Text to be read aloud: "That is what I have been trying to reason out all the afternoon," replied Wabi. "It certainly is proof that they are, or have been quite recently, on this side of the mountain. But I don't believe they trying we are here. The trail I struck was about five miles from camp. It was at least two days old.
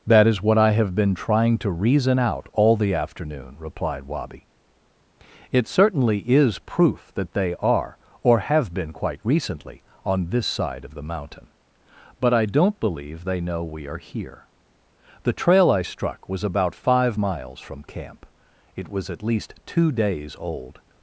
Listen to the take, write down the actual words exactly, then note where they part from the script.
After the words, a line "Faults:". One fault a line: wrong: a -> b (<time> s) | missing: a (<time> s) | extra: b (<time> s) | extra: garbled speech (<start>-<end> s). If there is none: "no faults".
"That is what I have been trying to reason out all the afternoon," replied Wabi. "It certainly is proof that they are, or have been quite recently, on this side of the mountain. But I don't believe they know we are here. The trail I struck was about five miles from camp. It was at least two days old.
Faults:
wrong: trying -> know (13.4 s)